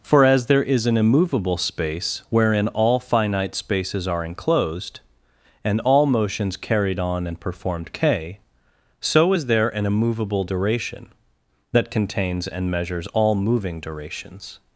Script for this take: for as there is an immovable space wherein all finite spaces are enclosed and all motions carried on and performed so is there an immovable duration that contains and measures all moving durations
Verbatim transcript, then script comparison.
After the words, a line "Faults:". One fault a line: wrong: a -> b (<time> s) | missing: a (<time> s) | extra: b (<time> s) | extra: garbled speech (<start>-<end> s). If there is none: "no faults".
for as there is an immovable space wherein all finite spaces are enclosed and all motions carried on and performed k so is there an immovable duration that contains and measures all moving durations
Faults:
extra: k (7.9 s)